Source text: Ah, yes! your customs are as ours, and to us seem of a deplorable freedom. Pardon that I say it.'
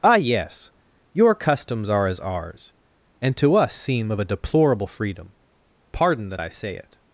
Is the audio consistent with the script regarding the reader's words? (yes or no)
yes